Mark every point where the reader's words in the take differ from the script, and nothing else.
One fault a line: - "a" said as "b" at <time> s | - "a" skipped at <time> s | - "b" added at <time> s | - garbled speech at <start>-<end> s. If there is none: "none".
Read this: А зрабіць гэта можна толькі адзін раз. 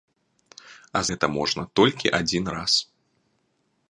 - "зрабіць" skipped at 1.0 s